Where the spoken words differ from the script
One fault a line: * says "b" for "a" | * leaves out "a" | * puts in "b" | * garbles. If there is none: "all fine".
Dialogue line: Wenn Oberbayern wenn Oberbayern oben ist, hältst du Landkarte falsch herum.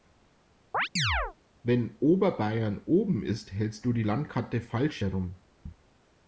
* leaves out "wenn Oberbayern"
* puts in "die"